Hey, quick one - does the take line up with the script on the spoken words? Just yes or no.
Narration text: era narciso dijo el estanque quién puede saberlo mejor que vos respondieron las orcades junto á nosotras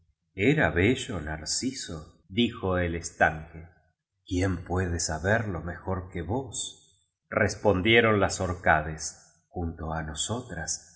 no